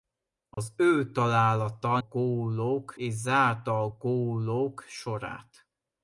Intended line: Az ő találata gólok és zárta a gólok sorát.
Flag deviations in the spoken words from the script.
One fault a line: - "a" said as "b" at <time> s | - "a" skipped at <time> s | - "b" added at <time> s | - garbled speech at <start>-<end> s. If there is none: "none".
none